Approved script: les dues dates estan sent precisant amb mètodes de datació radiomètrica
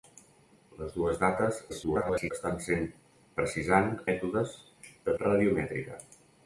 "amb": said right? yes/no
no